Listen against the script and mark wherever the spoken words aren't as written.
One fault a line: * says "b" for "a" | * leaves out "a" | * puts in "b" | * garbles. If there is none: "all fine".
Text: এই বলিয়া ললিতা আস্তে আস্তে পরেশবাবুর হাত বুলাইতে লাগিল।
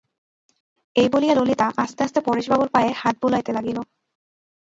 * puts in "পায়ে"